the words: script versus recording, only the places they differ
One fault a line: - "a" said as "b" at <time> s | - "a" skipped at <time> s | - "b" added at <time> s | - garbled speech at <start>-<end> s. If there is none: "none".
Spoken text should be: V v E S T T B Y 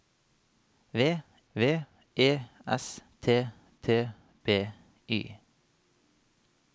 none